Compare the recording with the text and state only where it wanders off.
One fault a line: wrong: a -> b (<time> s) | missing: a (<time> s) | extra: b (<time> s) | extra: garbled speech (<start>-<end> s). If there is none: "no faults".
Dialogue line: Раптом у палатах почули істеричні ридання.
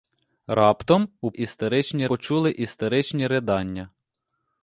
wrong: палатах -> істеричні (1.3 s)